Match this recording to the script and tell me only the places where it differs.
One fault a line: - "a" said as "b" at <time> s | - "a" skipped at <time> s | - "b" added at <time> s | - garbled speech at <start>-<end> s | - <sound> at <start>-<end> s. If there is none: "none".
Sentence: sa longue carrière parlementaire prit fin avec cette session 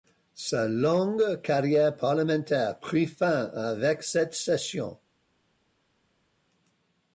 none